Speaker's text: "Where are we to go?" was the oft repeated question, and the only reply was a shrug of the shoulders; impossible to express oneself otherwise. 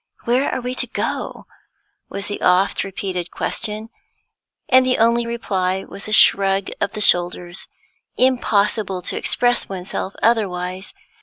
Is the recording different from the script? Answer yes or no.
no